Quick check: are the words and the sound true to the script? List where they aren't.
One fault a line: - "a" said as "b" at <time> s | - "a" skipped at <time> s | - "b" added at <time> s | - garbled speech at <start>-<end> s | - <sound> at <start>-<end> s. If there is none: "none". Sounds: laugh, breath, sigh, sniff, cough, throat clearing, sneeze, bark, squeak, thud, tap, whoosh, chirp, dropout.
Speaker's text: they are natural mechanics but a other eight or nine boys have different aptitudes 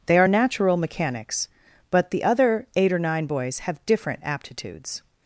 - "a" said as "the" at 2.1 s